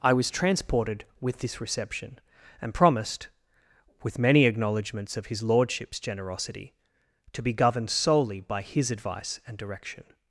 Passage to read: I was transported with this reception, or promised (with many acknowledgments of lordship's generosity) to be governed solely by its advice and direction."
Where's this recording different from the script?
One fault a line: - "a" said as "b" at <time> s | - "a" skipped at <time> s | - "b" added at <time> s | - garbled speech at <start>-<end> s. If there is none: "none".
- "or" said as "and" at 2.6 s
- "his" added at 5.3 s
- "its" said as "his" at 8.6 s